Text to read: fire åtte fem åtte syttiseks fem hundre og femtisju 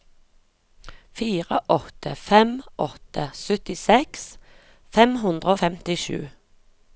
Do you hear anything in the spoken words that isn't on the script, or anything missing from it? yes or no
no